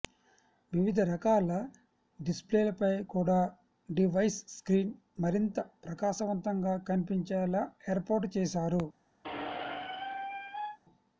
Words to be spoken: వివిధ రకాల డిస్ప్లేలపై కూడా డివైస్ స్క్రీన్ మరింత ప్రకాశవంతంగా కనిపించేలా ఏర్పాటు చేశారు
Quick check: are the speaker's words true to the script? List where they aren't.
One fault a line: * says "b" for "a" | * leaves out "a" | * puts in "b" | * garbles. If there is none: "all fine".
all fine